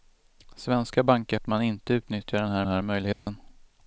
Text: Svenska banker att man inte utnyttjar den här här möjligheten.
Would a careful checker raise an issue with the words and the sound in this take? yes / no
yes